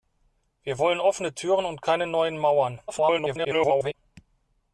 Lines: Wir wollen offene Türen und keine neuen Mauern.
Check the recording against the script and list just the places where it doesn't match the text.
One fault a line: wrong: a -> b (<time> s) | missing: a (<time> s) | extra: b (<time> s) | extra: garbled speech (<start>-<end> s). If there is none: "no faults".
extra: garbled speech (2.9-3.9 s)